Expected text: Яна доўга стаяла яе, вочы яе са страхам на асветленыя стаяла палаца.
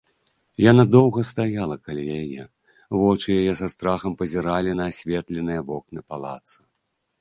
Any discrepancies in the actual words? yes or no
yes